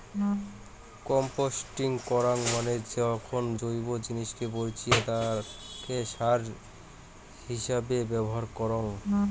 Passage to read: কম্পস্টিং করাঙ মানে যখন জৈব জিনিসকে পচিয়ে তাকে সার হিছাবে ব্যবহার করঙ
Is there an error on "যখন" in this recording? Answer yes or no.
no